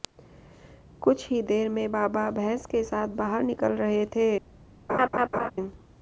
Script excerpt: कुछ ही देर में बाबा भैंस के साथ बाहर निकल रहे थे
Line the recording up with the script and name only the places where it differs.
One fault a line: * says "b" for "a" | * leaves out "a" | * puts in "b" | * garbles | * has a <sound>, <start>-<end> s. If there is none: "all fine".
* has a laugh, 4.9-5.5 s